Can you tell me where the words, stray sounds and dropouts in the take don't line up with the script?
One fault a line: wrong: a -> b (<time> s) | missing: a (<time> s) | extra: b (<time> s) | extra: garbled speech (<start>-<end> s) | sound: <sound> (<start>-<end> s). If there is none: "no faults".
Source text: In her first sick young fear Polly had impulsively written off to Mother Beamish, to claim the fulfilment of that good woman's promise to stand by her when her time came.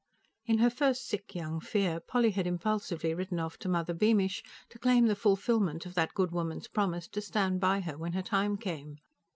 no faults